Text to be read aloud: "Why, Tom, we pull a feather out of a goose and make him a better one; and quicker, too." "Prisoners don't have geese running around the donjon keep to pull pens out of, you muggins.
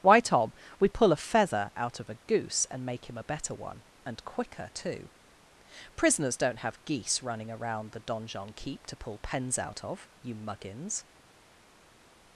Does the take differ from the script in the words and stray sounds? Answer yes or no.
no